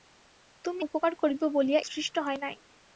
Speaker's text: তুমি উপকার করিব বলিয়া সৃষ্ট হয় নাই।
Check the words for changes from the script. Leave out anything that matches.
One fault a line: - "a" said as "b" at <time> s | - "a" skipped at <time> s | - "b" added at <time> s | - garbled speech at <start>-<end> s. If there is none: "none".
none